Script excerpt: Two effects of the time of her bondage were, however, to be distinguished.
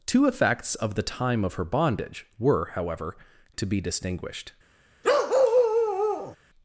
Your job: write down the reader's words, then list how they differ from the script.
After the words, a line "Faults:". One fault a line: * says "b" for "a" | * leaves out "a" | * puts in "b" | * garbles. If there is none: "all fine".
Two effects of the time of her bondage were, however, to be distinguished.
Faults:
all fine